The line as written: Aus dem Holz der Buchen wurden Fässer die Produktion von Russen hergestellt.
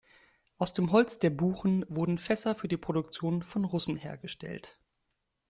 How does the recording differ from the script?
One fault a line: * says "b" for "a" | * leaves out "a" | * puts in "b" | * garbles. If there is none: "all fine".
* puts in "für"